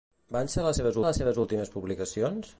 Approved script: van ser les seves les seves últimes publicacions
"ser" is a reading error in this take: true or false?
false